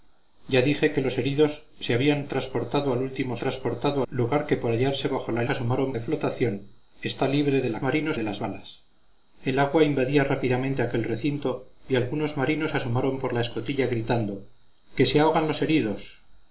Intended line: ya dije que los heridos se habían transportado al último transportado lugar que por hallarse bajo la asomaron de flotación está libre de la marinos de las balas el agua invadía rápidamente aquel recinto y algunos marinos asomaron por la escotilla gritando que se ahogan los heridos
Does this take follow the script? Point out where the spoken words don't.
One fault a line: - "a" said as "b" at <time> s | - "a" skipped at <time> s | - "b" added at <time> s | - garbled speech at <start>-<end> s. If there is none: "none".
none